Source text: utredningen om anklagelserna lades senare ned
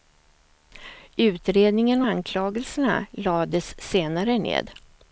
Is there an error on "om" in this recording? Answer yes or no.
yes